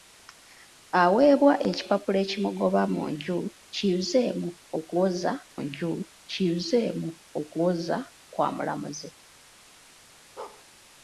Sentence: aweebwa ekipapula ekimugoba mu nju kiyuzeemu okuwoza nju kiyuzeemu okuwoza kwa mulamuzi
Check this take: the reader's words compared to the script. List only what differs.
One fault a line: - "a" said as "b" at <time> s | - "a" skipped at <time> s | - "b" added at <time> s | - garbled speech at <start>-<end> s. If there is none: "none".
none